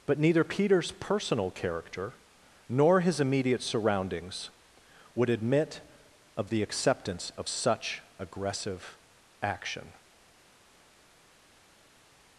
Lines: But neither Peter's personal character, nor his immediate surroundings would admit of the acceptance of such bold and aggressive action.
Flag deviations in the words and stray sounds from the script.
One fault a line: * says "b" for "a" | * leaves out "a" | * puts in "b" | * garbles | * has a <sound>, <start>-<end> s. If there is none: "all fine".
* leaves out "bold and"